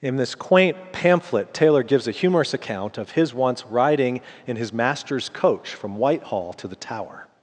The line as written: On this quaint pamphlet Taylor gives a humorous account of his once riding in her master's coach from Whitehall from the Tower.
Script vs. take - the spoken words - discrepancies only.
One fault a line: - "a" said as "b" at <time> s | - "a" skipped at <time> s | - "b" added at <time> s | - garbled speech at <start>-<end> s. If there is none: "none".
- "On" said as "In" at 0.0 s
- "her" said as "his" at 4.5 s
- "from" said as "to" at 6.5 s